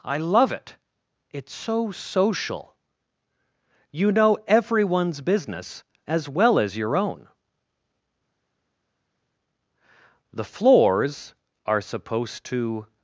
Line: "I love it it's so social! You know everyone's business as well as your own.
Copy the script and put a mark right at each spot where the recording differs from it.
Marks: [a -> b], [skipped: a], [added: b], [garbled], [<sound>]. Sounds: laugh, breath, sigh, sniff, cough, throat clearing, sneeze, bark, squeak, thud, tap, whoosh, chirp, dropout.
"I love it it's so social! You know everyone's business as well as your own. [added: The floors are supposed to]